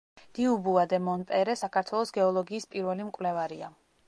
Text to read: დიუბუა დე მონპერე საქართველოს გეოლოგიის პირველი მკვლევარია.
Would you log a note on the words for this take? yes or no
no